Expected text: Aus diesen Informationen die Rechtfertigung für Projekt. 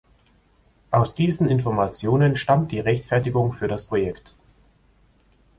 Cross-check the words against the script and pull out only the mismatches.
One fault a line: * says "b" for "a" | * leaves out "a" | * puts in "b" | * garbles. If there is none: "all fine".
* puts in "stammt"
* puts in "das"